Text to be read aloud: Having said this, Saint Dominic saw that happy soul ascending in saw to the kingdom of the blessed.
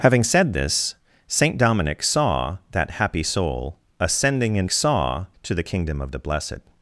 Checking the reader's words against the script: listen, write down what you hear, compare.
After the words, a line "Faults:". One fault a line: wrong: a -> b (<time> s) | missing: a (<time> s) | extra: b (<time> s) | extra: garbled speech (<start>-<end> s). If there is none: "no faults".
Having said this, Saint Dominic saw that happy soul ascending in saw to the kingdom of the blessed.
Faults:
no faults